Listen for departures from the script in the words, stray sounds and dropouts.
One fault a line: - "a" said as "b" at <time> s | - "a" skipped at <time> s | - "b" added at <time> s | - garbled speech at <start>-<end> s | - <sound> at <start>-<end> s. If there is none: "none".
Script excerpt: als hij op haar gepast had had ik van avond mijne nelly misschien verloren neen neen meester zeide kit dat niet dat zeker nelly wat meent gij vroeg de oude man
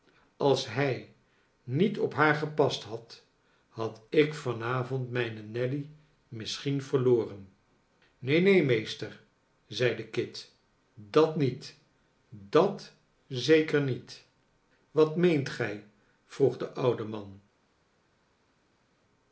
- "niet" added at 1.6 s
- "nelly" said as "niet" at 13.8 s